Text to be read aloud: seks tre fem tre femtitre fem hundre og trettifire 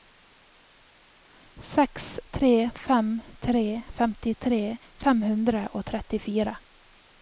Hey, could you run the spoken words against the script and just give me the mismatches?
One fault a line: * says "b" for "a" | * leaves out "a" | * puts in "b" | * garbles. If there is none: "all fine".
all fine